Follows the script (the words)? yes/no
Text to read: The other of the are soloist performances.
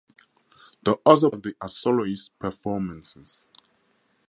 yes